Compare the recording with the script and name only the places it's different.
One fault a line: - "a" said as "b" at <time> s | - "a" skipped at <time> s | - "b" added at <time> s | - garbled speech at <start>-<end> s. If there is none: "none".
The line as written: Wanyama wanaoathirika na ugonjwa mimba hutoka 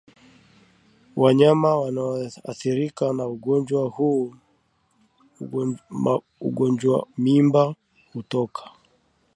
none